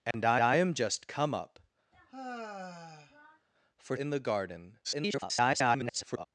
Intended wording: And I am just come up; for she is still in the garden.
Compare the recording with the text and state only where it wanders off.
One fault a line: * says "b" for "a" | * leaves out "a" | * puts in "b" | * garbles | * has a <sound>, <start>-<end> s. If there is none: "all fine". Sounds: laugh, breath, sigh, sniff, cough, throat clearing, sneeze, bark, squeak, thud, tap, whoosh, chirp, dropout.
* has a dropout, 0.1-0.1 s
* puts in "I"
* has a sigh, 1.9-3.5 s
* leaves out "she is still"
* garbles